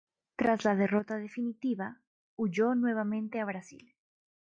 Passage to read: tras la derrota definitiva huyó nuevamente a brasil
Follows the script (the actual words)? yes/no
yes